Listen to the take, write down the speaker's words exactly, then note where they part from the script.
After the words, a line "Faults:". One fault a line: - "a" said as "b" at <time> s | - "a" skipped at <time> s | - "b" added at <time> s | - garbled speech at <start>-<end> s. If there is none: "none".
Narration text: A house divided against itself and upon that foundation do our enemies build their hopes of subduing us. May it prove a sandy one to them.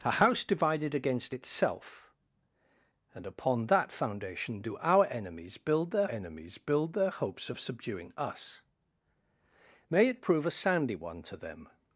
A house divided against itself and upon that foundation do our enemies build their enemies build their hopes of subduing us. May it prove a sandy one to them.
Faults:
- "enemies build their" added at 6.0 s